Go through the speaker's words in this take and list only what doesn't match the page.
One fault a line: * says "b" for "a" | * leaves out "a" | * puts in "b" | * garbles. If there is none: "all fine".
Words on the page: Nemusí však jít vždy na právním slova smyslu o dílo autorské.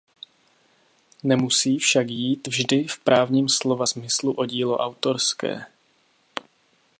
* says "v" for "na"